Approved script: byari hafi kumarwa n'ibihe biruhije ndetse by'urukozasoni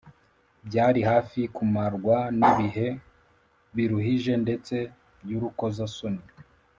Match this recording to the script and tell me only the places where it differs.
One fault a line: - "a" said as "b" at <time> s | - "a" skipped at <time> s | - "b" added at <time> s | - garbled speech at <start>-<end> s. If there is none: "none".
none